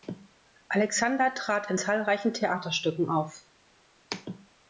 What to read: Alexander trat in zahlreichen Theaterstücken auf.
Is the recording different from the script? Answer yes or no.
no